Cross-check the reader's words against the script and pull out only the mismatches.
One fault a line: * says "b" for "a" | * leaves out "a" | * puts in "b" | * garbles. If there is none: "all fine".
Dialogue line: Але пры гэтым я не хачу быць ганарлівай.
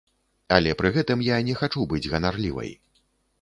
all fine